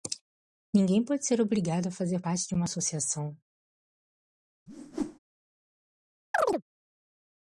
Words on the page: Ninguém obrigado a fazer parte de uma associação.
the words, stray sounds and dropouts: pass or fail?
fail